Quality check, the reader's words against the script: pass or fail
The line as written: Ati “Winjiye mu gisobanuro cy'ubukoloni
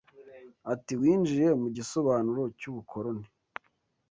pass